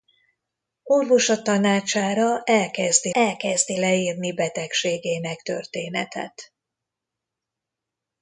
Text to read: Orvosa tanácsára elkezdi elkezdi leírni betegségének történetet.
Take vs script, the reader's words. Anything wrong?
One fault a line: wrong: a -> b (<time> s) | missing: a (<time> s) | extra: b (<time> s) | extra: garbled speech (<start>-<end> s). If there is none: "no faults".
no faults